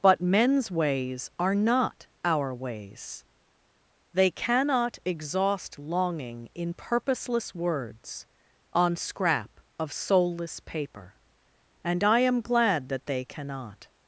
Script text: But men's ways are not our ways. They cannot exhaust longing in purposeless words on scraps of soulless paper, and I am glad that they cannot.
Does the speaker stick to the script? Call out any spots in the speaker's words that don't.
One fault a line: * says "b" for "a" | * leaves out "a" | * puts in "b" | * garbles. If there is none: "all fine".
* says "scrap" for "scraps"